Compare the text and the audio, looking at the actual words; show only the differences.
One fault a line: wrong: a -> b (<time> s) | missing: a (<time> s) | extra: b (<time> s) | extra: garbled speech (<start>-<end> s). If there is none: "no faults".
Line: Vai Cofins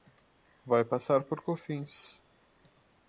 extra: passar por (0.8 s)